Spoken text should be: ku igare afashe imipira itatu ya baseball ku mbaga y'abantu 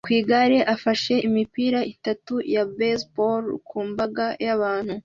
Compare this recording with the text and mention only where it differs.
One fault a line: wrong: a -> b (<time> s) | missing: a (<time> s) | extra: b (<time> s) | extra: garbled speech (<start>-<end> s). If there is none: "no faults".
no faults